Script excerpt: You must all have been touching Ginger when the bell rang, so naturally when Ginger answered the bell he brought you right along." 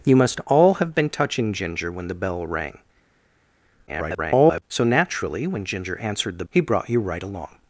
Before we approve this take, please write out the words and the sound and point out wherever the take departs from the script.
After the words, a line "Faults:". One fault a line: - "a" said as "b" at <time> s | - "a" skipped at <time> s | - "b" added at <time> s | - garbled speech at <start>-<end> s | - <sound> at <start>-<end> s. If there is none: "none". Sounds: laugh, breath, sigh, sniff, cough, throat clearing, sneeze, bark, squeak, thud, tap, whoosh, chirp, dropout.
You must all have been touching Ginger when the bell rang, [garbled] so naturally when Ginger answered the he brought you right along."
Faults:
- garbled speech at 3.9-4.6 s
- "bell" skipped at 6.4 s